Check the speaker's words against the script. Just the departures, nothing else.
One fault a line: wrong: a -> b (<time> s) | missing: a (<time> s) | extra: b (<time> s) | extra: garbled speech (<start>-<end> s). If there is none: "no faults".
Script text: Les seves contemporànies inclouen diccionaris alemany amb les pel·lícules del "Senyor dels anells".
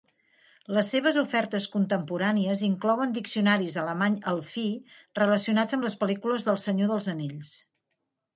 extra: ofertes (1.2 s)
extra: elfí relacionats (4.3 s)